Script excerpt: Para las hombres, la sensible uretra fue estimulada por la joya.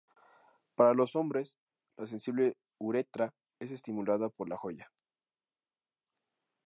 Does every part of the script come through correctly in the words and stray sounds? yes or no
no